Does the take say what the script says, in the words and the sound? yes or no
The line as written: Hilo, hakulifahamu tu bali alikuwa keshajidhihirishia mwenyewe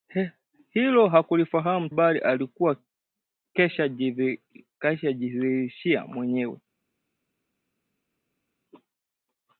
no